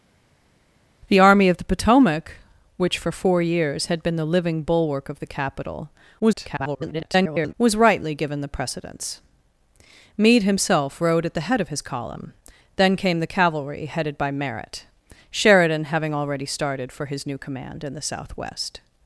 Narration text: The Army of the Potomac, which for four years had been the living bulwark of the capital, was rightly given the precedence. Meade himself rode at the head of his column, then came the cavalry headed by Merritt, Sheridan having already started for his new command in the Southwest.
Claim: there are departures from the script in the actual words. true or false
true